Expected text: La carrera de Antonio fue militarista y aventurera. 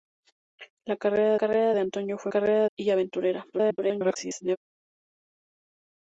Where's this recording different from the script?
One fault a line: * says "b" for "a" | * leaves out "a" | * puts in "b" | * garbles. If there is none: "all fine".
* puts in "carrera"
* says "carrera" for "militarista"
* garbles